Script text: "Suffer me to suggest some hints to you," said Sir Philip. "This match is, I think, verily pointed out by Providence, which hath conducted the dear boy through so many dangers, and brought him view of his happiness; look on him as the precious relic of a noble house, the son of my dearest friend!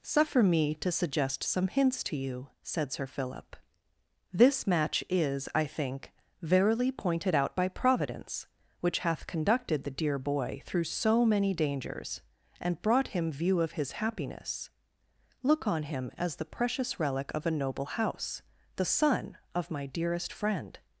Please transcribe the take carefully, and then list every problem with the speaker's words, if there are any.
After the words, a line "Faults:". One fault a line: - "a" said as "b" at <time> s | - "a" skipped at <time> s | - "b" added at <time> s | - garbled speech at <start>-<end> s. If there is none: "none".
"Suffer me to suggest some hints to you," said Sir Philip. "This match is, I think, verily pointed out by Providence, which hath conducted the dear boy through so many dangers, and brought him view of his happiness; look on him as the precious relic of a noble house, the son of my dearest friend!
Faults:
none